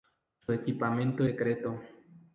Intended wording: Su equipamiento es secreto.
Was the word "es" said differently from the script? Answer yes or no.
yes